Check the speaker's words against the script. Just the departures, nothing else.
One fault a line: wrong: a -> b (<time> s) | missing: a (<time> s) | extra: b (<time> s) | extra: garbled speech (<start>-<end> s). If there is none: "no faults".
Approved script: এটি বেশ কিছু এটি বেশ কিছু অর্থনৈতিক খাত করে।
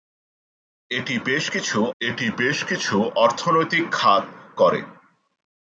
no faults